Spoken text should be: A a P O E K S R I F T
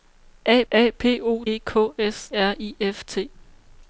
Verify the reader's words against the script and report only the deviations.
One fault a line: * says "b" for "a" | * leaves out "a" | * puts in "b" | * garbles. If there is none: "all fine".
all fine